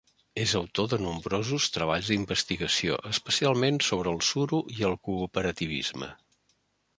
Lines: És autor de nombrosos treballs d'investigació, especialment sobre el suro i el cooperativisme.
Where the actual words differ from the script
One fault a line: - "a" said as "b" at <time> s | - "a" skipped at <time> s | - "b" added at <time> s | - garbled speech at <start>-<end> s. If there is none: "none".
none